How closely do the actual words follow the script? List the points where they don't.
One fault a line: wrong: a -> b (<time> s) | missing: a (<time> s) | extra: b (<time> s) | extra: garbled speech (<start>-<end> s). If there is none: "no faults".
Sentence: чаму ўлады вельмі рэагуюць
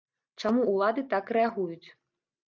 wrong: вельмі -> так (1.1 s)